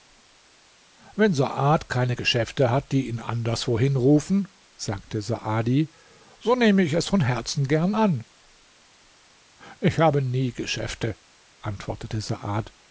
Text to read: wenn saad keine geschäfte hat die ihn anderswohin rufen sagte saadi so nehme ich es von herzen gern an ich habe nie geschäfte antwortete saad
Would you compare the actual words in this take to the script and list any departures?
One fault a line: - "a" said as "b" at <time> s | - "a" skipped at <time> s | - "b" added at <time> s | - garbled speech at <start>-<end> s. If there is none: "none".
none